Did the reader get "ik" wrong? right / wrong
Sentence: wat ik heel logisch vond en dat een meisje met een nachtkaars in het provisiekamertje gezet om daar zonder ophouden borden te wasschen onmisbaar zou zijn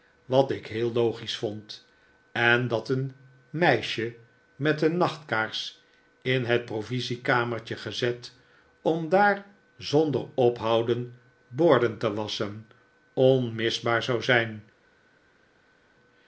right